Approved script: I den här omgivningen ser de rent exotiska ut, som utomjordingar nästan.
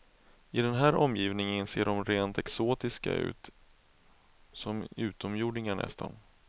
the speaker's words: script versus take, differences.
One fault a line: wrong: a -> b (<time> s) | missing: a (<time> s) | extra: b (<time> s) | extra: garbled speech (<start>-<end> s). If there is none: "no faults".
no faults